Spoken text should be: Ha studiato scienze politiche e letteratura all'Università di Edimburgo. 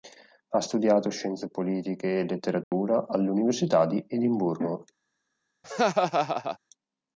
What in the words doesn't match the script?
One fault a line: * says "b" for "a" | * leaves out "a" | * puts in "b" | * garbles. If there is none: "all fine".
all fine